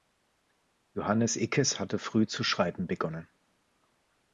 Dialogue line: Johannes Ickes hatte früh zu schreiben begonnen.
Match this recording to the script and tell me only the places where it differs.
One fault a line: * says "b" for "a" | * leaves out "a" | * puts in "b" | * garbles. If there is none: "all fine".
all fine